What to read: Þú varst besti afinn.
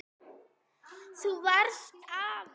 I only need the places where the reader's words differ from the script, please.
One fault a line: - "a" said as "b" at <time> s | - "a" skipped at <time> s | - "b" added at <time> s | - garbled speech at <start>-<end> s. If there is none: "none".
- "besti" skipped at 1.9 s